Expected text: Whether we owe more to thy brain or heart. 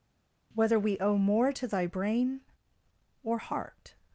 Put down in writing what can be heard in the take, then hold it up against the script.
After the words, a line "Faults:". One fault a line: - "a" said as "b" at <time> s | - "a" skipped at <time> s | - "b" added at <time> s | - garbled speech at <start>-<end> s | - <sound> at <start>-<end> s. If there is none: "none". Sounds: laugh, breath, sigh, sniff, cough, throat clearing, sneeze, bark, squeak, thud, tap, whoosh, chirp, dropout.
Whether we owe more to thy brain or heart.
Faults:
none